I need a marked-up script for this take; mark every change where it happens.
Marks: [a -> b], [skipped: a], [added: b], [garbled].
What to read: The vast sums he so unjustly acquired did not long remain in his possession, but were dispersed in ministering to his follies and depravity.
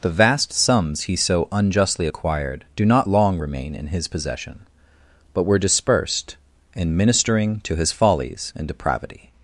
The vast sums he so unjustly acquired [did -> do] not long remain in his possession, but were dispersed in ministering to his follies and depravity.